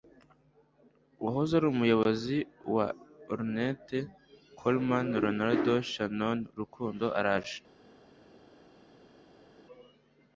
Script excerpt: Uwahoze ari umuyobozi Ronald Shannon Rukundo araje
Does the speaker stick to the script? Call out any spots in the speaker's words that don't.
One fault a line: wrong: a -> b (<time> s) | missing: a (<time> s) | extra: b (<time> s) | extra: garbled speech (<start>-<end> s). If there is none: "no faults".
extra: wa Ornette Coleman (2.8 s)